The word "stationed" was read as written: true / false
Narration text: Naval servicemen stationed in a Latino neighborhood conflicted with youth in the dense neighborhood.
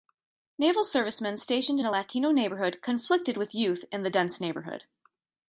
true